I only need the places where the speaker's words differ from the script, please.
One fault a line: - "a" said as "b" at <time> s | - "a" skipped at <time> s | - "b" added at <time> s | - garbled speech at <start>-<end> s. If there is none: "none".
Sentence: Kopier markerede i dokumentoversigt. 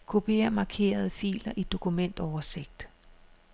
- "filer" added at 1.1 s